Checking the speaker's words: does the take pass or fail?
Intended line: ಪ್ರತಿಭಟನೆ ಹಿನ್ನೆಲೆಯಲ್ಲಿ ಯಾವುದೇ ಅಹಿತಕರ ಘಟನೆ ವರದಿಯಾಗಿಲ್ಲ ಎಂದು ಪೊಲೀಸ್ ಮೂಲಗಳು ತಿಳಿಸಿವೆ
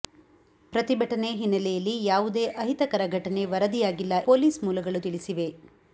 fail